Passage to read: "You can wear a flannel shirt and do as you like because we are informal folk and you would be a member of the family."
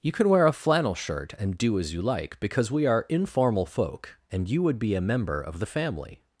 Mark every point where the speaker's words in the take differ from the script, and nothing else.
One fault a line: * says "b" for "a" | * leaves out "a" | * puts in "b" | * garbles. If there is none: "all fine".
all fine